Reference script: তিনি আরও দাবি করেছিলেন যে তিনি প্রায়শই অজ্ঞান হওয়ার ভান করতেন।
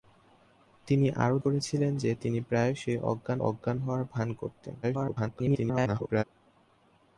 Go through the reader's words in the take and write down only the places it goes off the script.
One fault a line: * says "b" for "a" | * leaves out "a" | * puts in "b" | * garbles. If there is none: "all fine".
* leaves out "দাবি"
* puts in "অজ্ঞান"
* garbles